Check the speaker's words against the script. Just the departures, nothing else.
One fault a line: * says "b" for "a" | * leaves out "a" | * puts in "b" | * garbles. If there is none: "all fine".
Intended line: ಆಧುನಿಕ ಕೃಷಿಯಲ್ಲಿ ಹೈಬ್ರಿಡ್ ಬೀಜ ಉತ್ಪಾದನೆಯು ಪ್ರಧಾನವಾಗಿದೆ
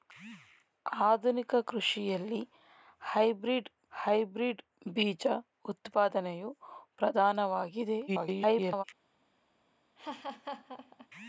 * puts in "ಹೈಬ್ರಿಡ್"
* garbles